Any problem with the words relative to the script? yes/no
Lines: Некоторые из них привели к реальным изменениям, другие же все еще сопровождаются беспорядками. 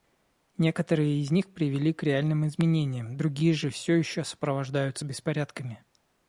no